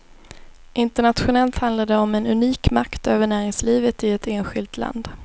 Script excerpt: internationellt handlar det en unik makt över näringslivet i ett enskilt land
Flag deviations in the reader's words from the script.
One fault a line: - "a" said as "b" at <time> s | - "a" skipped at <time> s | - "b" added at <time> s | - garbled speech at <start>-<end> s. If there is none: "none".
- "om" added at 2.0 s